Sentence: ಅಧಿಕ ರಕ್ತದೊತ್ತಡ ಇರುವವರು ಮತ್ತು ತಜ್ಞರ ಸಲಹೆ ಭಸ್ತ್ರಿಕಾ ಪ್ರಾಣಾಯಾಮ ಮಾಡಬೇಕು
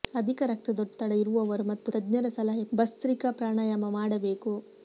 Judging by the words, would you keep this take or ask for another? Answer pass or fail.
pass